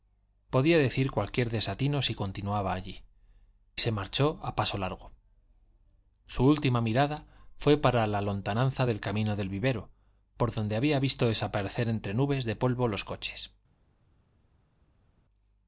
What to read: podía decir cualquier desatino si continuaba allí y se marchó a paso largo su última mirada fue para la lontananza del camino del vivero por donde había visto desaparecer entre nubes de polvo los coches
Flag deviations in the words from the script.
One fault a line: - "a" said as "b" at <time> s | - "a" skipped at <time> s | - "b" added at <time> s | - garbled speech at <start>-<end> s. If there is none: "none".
- "y" skipped at 3.0 s